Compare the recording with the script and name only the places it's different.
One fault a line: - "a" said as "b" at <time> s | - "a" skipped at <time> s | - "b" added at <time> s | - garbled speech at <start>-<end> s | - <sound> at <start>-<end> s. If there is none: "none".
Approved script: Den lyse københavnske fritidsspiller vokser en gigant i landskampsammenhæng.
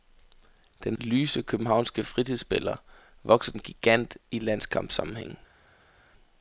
none